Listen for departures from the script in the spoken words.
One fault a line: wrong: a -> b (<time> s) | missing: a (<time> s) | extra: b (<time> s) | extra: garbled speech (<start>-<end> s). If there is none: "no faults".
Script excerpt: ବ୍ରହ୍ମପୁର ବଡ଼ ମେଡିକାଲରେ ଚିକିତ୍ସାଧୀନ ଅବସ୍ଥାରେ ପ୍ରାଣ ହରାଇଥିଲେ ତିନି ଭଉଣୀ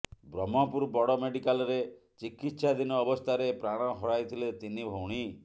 no faults